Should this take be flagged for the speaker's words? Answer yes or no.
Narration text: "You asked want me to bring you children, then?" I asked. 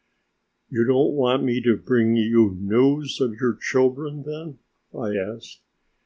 yes